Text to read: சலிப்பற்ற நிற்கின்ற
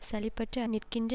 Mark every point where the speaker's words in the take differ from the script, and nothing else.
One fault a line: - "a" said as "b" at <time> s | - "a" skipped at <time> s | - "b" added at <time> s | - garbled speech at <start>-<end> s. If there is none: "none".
none